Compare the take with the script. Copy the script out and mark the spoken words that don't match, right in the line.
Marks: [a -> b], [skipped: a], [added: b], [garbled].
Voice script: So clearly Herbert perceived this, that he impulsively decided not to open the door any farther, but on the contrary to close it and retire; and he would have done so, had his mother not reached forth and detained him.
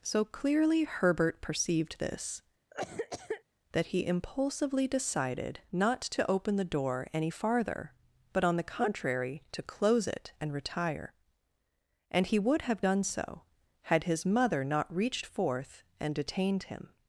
So clearly Herbert perceived this, that he impulsively decided not to open the door any farther, but on the contrary to close it and retire; and he would have done so, had his mother not reached forth and detained him.